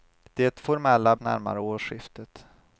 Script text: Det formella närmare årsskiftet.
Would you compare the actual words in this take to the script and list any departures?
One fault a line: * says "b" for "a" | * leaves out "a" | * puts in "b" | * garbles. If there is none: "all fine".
all fine